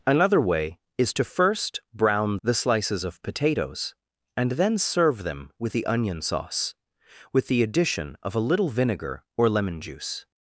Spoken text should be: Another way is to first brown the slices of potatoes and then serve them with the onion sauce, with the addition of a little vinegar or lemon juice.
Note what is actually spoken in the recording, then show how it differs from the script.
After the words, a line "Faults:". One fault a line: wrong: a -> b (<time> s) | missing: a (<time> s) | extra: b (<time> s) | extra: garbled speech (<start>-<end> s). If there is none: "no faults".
Another way is to first brown the slices of potatoes and then serve them with the onion sauce, with the addition of a little vinegar or lemon juice.
Faults:
no faults